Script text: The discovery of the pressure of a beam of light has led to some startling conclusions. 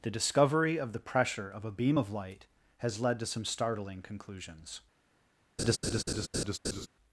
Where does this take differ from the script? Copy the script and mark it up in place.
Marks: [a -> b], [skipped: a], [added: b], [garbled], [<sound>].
The discovery of the pressure of a beam of light has led to some startling conclusions. [laugh]